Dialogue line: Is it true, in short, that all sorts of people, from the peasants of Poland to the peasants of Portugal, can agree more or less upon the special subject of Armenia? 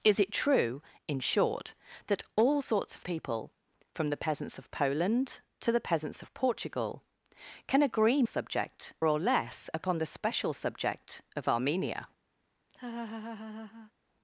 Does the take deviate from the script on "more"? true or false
true